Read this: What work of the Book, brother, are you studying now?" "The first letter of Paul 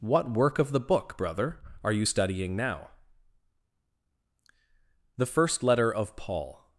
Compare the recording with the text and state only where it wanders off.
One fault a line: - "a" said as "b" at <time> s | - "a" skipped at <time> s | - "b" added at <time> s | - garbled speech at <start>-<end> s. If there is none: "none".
none